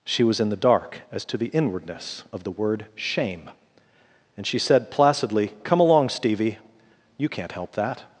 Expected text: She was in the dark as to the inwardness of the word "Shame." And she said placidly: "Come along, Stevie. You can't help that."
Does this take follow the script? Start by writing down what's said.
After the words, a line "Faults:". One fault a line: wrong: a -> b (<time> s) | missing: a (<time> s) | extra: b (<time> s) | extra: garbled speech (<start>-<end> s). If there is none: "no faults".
She was in the dark as to the inwardness of the word "Shame." And she said placidly: "Come along, Stevie. You can't help that."
Faults:
no faults